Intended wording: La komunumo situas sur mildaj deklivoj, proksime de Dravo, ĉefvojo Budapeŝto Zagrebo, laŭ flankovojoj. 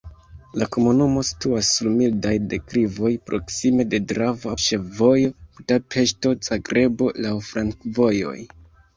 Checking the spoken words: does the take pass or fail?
pass